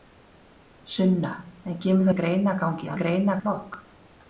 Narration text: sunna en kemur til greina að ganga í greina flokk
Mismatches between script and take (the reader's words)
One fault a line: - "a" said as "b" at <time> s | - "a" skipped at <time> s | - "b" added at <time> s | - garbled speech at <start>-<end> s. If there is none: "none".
none